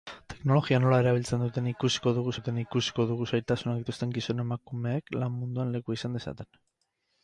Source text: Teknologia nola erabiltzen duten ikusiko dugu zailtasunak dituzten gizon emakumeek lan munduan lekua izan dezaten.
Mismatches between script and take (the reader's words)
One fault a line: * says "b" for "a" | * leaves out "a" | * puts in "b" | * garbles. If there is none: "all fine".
* puts in "duten ikusiko dugu"